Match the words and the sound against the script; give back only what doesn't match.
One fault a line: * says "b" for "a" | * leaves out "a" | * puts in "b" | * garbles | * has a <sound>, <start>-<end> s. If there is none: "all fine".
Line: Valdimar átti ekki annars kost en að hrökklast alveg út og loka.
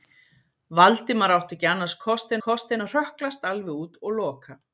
* puts in "kost"